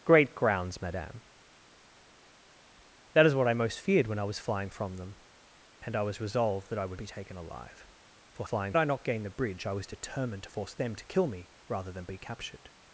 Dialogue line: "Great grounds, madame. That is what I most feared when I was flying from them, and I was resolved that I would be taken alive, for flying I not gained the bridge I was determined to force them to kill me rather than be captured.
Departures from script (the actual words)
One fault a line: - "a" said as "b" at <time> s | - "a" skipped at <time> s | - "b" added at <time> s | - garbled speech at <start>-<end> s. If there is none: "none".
none